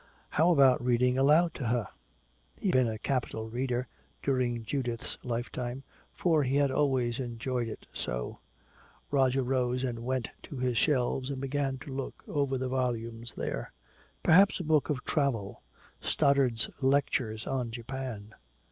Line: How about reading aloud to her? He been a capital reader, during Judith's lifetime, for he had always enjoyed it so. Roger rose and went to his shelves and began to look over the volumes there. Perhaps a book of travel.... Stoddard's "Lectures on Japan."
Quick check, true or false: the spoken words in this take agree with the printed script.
true